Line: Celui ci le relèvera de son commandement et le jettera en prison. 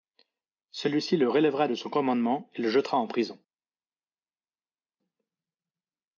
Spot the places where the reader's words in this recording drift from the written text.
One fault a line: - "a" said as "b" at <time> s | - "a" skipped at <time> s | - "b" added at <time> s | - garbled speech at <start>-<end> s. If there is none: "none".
none